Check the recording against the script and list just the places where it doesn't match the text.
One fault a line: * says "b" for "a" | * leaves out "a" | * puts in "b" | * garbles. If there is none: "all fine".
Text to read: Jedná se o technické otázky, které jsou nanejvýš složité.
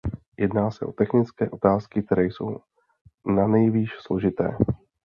all fine